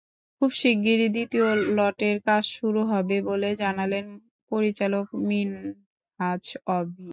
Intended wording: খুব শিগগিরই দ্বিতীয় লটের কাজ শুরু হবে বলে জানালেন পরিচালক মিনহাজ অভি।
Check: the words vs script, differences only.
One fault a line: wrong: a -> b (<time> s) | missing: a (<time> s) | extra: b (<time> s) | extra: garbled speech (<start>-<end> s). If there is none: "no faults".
no faults